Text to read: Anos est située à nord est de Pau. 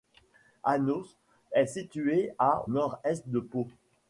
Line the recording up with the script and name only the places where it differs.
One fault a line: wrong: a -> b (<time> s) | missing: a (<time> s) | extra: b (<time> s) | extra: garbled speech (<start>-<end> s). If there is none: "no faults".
no faults